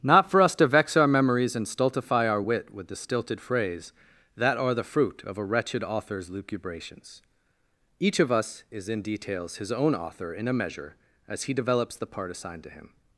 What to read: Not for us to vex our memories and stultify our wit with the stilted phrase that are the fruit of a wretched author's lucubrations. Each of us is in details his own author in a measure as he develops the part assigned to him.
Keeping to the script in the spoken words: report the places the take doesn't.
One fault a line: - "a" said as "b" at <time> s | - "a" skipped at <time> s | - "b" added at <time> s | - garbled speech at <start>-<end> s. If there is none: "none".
none